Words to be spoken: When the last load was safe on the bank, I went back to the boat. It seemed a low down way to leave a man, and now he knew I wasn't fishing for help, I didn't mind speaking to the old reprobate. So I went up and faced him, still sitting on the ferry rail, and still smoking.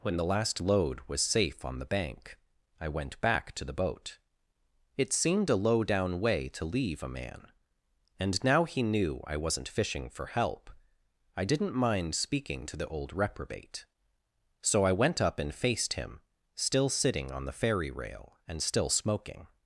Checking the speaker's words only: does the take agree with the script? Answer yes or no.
yes